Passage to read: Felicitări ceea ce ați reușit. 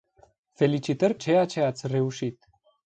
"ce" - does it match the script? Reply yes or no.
yes